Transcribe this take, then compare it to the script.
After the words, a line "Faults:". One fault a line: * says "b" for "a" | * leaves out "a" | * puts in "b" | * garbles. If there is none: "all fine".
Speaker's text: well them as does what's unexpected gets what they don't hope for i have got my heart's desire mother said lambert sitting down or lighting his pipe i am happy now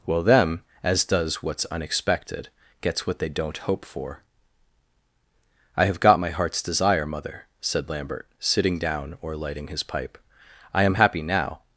well them as does what's unexpected gets what they don't hope for i have got my heart's desire mother said lambert sitting down or lighting his pipe i am happy now
Faults:
all fine